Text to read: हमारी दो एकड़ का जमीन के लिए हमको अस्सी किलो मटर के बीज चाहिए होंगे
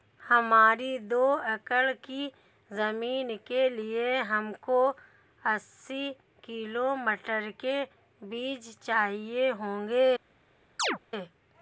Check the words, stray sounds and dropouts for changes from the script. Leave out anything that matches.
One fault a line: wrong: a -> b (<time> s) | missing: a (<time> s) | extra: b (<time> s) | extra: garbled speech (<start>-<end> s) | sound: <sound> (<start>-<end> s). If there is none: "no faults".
wrong: का -> की (2.0 s)
sound: chirp (10.8-11.0 s)